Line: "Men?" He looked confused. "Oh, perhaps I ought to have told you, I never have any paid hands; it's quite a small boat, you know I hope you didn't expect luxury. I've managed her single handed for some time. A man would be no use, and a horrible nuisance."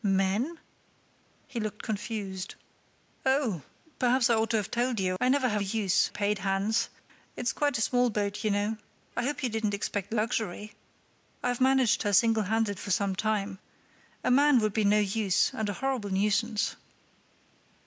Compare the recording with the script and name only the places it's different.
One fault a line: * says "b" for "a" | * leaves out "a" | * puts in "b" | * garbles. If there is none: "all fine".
* says "use" for "any"